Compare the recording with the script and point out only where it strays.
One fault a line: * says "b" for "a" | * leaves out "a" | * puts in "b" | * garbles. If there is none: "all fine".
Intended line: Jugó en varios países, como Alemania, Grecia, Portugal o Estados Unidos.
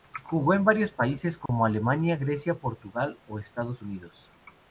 all fine